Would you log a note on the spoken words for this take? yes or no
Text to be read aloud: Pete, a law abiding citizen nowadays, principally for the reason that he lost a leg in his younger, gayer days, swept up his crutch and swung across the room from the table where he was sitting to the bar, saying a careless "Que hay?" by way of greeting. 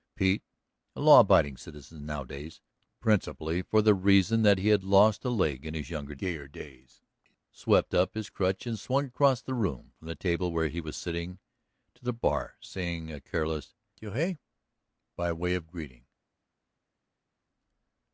yes